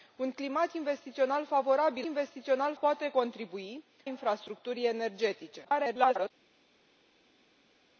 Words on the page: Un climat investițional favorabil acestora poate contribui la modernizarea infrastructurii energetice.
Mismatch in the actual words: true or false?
true